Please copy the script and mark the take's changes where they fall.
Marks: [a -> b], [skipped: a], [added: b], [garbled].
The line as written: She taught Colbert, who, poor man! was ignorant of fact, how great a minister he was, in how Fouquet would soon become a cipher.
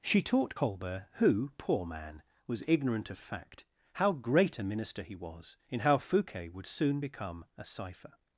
She taught Colbert, who, poor man! was ignorant of fact, how great a minister he was, in how Fouquet would soon become a cipher.